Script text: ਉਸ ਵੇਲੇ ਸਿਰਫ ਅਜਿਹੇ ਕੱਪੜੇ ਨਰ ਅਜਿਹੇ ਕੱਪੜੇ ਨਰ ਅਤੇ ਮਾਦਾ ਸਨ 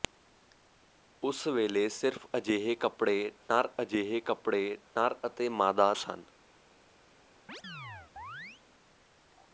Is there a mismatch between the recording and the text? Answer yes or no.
no